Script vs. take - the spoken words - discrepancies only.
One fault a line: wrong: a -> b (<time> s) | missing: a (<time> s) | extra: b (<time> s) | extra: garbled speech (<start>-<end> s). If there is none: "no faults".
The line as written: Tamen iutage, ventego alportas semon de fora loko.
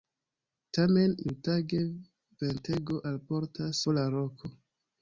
missing: semon de (3.8 s)